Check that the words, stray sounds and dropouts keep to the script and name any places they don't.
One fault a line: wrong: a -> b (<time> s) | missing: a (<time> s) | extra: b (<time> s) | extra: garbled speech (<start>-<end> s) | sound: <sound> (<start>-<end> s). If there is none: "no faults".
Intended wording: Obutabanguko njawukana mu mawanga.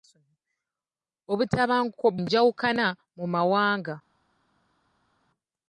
no faults